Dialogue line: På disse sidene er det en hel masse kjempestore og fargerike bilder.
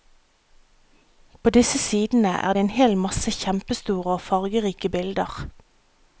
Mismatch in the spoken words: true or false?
false